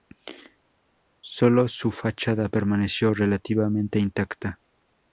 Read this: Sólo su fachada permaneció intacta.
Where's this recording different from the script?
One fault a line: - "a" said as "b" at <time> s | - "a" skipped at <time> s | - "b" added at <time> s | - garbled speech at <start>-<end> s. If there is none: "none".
- "relativamente" added at 3.1 s